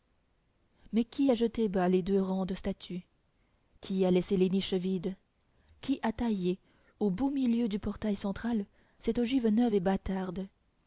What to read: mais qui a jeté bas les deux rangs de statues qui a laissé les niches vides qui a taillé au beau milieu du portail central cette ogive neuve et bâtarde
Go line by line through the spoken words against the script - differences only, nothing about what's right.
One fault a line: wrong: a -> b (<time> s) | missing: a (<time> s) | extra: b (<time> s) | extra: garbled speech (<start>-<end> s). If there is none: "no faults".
no faults